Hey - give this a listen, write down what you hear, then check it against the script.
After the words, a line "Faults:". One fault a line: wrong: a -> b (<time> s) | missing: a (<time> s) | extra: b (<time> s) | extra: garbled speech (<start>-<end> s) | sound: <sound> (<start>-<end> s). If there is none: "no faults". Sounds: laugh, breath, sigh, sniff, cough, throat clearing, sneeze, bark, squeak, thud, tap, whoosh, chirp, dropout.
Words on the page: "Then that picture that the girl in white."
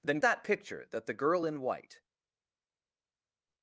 "Then that picture that the girl in white."
Faults:
no faults